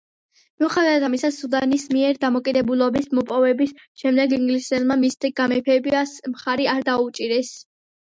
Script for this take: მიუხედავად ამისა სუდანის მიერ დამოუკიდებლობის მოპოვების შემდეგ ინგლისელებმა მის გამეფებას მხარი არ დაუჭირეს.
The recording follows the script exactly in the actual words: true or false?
true